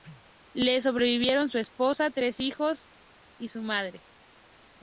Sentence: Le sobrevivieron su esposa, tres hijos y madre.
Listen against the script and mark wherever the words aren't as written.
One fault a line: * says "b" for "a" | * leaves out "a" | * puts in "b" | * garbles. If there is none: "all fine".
* puts in "su"